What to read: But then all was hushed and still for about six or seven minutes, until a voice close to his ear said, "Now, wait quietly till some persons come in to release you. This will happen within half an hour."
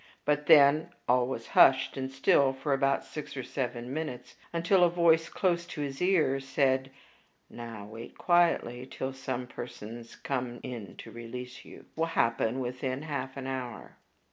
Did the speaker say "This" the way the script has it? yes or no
no